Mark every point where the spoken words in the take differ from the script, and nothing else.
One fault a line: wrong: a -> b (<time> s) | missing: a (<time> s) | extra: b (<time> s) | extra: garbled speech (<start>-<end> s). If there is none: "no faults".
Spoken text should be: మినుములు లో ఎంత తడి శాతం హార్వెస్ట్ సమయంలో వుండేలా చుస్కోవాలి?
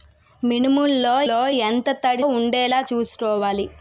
extra: లో (1.3 s)
missing: శాతం హార్వెస్ట్ సమయంలో (2.2 s)